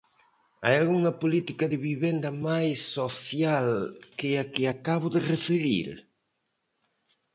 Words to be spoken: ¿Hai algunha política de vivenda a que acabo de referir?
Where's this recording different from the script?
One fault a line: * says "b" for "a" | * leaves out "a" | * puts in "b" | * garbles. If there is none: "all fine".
* puts in "máis social que"